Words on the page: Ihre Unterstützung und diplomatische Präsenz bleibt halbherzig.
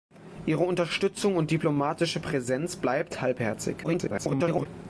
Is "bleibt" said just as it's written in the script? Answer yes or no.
yes